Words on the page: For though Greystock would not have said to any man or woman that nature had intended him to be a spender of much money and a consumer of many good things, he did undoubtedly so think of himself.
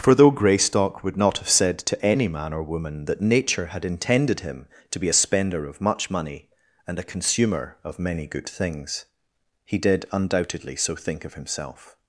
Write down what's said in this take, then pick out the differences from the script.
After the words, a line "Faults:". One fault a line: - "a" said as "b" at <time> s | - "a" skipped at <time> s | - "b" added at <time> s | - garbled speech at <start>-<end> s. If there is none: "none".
For though Greystock would not have said to any man or woman that nature had intended him to be a spender of much money and a consumer of many good things, he did undoubtedly so think of himself.
Faults:
none